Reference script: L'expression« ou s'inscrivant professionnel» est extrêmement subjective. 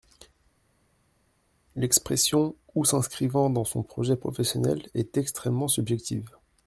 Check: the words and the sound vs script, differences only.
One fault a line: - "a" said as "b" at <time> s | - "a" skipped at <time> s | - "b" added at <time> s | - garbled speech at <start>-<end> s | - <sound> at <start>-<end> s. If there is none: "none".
- "dans son projet" added at 3.5 s